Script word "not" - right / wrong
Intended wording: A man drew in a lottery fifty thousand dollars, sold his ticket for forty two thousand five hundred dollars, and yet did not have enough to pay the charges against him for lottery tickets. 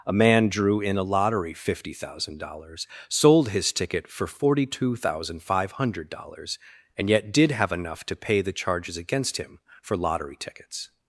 wrong